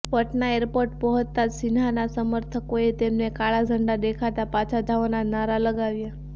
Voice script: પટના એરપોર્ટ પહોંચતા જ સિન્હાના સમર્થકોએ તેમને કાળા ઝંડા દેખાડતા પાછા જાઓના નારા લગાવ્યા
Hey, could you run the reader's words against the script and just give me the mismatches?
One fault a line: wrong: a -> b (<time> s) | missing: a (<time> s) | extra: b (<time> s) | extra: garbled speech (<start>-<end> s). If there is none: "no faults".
no faults